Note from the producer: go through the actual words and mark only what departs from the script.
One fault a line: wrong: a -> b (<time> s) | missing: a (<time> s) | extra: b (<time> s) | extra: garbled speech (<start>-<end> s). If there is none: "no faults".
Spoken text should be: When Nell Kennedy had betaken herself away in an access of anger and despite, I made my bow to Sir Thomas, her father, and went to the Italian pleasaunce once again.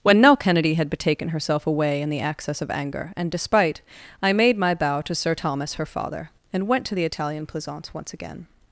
wrong: an -> the (2.1 s)